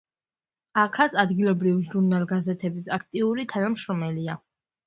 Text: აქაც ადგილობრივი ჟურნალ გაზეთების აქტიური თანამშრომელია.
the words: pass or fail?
pass